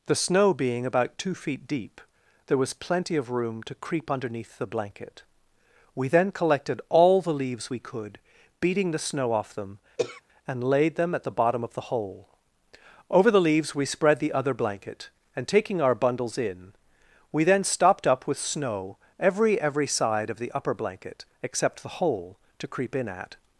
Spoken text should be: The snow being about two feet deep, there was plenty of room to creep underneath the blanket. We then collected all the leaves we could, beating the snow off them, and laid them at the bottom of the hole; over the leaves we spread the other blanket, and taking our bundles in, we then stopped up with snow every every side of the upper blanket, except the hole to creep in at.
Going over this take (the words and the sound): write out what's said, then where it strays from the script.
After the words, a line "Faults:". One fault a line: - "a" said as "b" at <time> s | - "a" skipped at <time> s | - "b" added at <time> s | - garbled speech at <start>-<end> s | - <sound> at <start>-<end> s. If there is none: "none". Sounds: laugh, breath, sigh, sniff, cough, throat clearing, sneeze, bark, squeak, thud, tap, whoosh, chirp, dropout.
The snow being about two feet deep, there was plenty of room to creep underneath the blanket. We then collected all the leaves we could, beating the snow off them, and laid them at the bottom of the hole; over the leaves we spread the other blanket, and taking our bundles in, we then stopped up with snow every every side of the upper blanket, except the hole to creep in at.
Faults:
- throat clearing at 10.0-10.2 s